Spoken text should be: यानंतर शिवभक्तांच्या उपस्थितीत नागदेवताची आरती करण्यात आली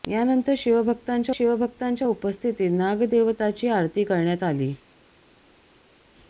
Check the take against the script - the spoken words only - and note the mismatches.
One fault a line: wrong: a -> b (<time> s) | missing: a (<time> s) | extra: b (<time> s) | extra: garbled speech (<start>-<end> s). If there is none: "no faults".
extra: शिवभक्तांच्या (1.3 s)